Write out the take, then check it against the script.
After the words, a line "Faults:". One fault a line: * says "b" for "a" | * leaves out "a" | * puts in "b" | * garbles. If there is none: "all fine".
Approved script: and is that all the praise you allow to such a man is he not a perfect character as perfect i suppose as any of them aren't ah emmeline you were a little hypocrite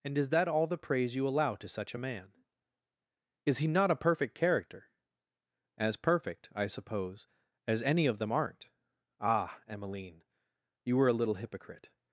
and is that all the praise you allow to such a man is he not a perfect character as perfect i suppose as any of them aren't ah emmeline you were a little hypocrite
Faults:
all fine